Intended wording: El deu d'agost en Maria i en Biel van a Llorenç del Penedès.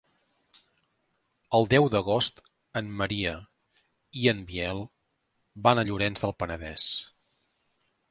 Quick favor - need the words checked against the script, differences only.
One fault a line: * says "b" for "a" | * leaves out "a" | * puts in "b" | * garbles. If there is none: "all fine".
all fine